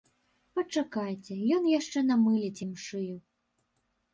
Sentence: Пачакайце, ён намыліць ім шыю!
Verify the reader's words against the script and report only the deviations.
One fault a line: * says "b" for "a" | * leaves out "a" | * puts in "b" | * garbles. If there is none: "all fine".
* puts in "яшчэ"